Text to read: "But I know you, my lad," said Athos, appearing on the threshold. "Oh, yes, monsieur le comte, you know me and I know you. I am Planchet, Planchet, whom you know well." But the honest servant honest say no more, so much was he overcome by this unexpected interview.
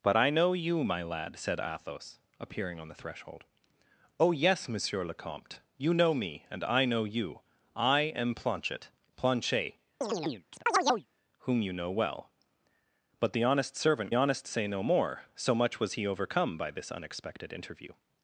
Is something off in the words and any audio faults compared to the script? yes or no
yes